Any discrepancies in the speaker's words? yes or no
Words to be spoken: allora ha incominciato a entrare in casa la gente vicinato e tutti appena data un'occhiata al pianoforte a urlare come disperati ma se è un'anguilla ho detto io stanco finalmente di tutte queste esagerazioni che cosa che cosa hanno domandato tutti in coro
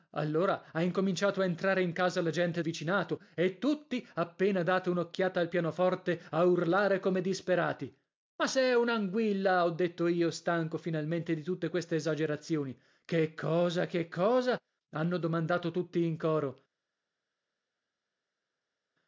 no